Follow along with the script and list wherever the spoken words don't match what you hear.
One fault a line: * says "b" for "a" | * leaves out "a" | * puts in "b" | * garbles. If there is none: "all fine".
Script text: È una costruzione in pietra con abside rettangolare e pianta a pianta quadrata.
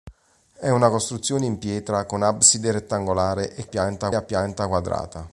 all fine